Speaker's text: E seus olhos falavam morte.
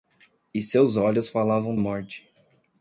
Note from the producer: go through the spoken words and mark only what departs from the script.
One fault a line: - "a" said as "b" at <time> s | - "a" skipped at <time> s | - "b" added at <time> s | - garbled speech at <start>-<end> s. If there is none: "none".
none